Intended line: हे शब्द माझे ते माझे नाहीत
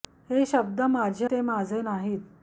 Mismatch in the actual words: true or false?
false